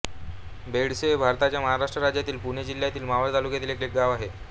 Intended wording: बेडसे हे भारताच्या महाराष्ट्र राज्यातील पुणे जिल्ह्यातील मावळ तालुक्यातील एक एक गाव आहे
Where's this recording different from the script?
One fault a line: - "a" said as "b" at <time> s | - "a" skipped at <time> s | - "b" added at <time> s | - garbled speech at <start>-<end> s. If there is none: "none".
none